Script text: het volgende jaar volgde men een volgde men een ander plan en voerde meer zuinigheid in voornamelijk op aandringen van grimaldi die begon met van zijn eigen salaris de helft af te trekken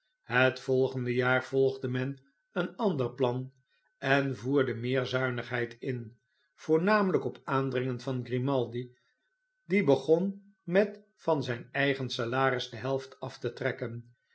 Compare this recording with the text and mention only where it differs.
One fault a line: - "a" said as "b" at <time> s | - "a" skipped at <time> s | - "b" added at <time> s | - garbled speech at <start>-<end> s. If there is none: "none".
- "volgde men een" skipped at 2.8 s